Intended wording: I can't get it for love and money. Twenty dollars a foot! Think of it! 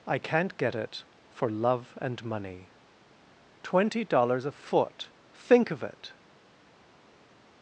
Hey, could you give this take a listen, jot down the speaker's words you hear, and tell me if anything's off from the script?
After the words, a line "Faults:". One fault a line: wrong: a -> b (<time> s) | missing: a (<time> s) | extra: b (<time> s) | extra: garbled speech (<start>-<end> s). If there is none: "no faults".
I can't get it for love and money. Twenty dollars a foot! Think of it!
Faults:
no faults